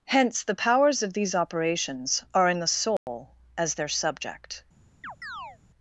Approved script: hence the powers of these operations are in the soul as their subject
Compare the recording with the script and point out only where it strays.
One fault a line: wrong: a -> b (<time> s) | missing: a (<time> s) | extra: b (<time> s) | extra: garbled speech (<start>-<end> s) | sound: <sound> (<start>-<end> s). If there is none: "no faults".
sound: dropout (3.0-3.1 s)
sound: chirp (5.0-5.6 s)